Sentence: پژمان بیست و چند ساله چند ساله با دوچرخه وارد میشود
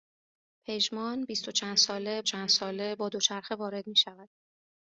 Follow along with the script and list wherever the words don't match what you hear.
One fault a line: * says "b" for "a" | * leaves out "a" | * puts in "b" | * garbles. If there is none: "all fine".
all fine